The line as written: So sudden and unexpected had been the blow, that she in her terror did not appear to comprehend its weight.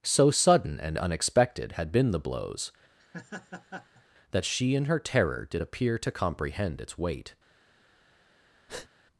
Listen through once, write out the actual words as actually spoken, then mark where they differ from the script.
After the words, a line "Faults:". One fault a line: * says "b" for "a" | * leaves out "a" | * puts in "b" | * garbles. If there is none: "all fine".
So sudden and unexpected had been the blows, that she in her terror did appear to comprehend its weight.
Faults:
* says "blows" for "blow"
* leaves out "not"